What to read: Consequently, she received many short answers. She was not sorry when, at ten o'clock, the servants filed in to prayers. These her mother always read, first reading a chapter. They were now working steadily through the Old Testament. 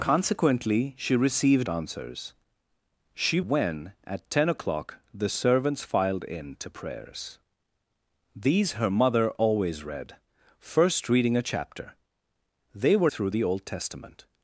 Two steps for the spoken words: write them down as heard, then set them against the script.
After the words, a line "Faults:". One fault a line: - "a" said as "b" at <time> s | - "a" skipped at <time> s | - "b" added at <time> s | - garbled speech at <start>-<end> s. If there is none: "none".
Consequently, she received answers. She when, at ten o'clock, the servants filed in to prayers. These her mother always read, first reading a chapter. They were through the Old Testament.
Faults:
- "many short" skipped at 1.7 s
- "was not sorry" skipped at 3.4 s
- "now working steadily" skipped at 13.1 s